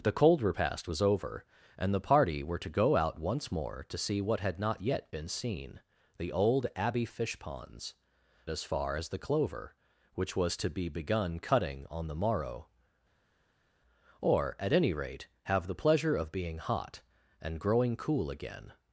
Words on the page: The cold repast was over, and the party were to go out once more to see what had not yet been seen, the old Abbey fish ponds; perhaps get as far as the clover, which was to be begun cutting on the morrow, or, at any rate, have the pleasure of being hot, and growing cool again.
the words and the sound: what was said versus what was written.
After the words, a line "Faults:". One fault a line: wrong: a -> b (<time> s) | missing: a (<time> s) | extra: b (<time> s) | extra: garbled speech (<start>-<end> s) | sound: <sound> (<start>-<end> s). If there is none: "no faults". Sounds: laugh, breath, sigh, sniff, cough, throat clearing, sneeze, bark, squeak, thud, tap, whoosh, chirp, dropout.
The cold repast was over, and the party were to go out once more to see what had not yet been seen, the old Abbey fish ponds; as far as the clover, which was to be begun cutting on the morrow, or, at any rate, have the pleasure of being hot, and growing cool again.
Faults:
missing: perhaps get (7.9 s)